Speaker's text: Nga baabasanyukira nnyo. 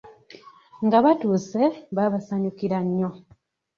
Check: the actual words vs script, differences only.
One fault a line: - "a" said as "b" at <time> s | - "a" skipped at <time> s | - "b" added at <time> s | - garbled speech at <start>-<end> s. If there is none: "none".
- "batuuse" added at 1.1 s